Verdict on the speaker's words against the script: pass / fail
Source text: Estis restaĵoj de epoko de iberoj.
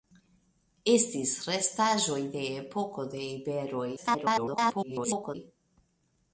fail